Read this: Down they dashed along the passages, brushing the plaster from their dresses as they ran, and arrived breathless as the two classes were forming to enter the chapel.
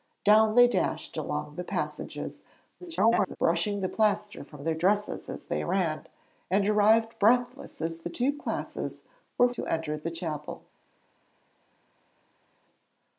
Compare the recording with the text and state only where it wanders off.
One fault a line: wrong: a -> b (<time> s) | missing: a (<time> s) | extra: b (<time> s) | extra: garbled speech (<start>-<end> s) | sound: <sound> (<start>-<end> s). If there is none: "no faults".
extra: garbled speech (2.8-3.4 s)
missing: forming (9.5 s)